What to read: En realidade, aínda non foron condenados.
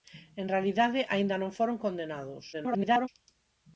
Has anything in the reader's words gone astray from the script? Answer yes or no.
yes